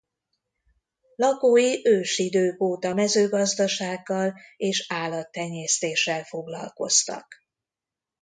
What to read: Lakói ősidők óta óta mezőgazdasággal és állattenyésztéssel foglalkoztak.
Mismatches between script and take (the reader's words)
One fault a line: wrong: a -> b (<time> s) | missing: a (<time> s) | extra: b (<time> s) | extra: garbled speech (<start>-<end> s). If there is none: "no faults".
missing: óta (3.0 s)